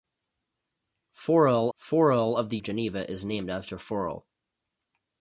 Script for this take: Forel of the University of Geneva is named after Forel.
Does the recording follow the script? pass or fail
fail